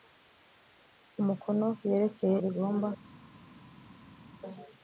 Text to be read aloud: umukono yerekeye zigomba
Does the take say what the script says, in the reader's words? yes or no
yes